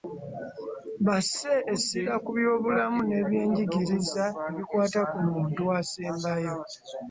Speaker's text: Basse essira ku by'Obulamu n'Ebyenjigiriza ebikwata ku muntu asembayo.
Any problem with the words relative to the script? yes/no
no